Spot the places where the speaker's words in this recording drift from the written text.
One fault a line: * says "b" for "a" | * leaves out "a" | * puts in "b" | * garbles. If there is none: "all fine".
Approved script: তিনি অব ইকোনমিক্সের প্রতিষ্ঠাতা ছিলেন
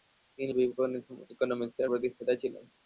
all fine